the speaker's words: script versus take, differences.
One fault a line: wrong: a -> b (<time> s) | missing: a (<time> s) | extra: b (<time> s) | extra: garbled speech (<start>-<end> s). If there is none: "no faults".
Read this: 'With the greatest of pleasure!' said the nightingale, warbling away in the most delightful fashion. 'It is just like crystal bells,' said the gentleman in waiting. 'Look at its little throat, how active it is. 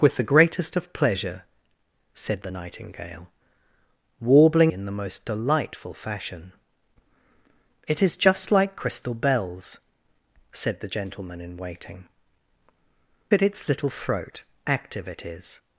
missing: away (4.7 s)
missing: Look (12.1 s)
missing: how (14.4 s)